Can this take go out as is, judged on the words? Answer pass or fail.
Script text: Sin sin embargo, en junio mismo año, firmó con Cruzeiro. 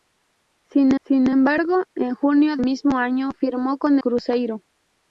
pass